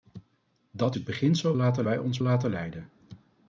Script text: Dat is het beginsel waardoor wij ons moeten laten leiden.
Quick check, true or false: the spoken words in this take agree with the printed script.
false